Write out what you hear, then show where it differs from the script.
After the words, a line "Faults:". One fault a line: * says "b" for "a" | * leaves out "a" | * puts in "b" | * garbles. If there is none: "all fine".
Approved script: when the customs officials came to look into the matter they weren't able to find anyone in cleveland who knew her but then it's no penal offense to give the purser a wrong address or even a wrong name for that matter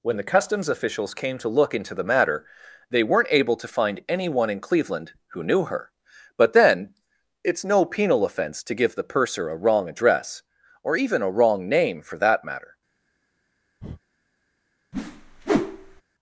when the customs officials came to look into the matter they weren't able to find anyone in cleveland who knew her but then it's no penal offense to give the purser a wrong address or even a wrong name for that matter
Faults:
all fine